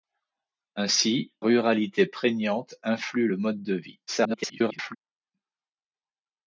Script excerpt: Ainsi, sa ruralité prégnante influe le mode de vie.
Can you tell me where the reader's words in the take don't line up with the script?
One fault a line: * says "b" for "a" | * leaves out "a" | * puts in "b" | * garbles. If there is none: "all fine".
* leaves out "sa"
* garbles